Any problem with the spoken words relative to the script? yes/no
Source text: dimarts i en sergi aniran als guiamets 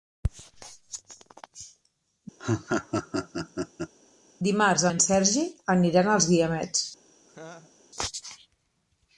no